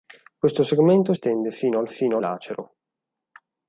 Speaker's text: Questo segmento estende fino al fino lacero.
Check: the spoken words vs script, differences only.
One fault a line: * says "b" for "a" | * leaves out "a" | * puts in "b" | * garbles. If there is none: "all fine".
all fine